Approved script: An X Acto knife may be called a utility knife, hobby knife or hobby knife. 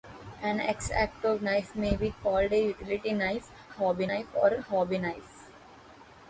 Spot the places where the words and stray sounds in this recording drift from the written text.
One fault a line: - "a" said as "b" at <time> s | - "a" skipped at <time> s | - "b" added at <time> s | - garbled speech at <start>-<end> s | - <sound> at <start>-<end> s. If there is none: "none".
none